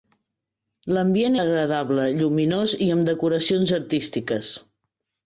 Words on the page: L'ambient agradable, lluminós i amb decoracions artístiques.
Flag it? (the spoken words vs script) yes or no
no